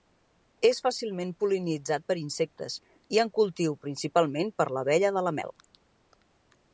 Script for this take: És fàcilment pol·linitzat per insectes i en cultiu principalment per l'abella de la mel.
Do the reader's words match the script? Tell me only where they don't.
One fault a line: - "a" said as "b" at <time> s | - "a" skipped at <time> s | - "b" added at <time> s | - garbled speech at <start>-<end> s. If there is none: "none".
none